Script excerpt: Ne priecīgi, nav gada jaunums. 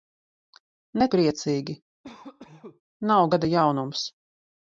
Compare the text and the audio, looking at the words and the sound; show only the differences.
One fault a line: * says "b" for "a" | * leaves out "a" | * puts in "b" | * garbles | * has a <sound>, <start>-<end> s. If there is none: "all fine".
* has a cough, 2.0-2.8 s